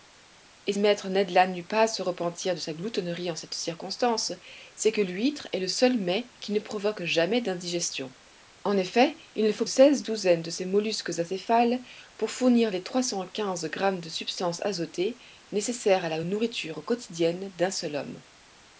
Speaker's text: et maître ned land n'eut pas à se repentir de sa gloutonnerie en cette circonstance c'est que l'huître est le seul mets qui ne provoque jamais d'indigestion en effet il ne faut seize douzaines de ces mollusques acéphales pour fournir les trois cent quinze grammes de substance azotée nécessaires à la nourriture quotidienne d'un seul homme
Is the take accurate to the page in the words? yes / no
yes